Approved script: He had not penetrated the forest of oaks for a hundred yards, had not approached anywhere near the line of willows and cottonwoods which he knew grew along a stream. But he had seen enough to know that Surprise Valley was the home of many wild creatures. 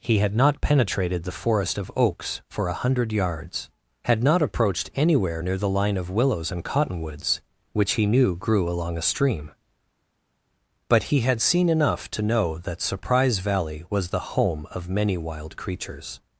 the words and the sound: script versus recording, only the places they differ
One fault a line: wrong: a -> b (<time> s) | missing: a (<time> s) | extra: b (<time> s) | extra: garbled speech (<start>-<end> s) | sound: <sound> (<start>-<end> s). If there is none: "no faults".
no faults